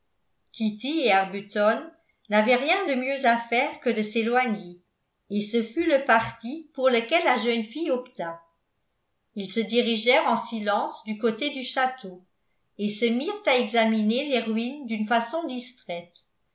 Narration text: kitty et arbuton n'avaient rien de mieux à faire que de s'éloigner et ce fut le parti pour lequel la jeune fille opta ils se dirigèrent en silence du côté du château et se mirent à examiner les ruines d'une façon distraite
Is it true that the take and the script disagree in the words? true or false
false